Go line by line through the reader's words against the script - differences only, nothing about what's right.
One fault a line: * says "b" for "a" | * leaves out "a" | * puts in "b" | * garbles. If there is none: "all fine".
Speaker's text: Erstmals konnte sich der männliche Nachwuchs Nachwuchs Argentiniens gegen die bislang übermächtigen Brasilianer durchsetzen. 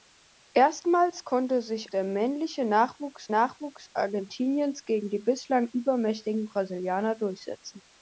all fine